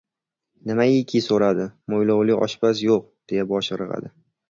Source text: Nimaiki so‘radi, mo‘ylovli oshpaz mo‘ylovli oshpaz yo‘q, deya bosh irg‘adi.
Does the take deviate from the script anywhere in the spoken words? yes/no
yes